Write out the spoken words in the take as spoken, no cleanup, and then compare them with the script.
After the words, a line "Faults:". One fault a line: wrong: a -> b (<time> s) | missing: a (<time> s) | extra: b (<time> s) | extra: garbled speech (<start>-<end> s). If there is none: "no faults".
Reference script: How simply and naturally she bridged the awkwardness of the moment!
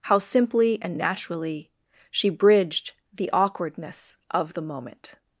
How simply and naturally she bridged the awkwardness of the moment!
Faults:
no faults